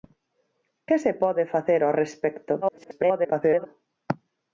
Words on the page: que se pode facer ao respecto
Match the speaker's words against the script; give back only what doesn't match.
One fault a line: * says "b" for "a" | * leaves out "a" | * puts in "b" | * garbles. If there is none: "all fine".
* garbles